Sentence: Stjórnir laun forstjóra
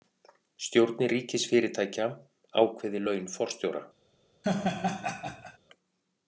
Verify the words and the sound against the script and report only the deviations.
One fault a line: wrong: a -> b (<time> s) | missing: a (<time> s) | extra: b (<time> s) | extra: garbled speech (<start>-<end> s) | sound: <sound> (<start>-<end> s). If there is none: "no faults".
extra: ríkisfyrirtækja ákveði (1.1 s)
sound: laugh (4.4-5.6 s)